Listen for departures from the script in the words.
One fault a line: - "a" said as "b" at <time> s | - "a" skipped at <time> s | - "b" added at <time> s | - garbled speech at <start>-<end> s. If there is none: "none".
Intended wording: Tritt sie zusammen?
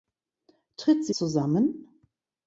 none